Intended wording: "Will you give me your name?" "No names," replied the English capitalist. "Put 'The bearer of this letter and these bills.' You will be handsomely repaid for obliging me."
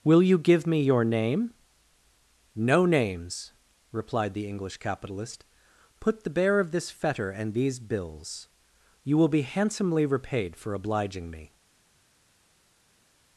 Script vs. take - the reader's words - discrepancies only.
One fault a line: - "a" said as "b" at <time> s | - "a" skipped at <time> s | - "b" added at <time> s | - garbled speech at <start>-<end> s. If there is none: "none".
- "letter" said as "fetter" at 6.9 s